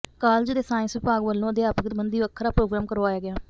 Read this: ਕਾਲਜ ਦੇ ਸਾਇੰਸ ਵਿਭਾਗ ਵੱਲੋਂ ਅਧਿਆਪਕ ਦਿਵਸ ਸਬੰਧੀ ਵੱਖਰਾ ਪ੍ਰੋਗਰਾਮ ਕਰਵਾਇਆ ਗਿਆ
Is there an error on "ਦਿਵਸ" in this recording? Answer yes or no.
yes